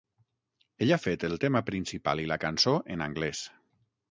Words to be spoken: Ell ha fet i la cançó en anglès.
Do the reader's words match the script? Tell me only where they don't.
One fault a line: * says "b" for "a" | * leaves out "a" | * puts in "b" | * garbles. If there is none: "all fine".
* puts in "el tema principal"